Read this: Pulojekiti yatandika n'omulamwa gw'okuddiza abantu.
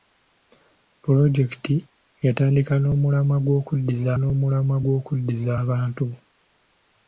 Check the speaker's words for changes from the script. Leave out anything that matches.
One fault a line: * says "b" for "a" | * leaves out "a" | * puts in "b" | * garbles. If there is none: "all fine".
* puts in "n'omulamwa gw'okuddiza"